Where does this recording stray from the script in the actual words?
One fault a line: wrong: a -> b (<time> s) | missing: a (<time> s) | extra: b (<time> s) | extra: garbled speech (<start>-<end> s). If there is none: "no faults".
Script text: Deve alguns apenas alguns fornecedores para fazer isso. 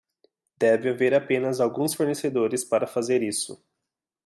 wrong: alguns -> haver (0.9 s)